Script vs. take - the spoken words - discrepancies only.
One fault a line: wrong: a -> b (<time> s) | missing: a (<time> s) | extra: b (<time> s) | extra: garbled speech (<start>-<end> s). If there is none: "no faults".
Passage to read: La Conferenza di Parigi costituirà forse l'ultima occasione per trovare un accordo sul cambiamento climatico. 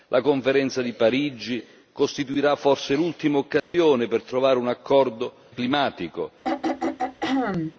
missing: sul cambiamento (5.3 s)